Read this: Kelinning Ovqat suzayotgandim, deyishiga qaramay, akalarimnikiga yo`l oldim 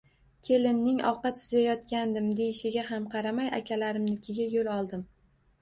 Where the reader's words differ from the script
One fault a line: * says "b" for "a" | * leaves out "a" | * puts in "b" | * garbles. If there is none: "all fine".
* puts in "ham"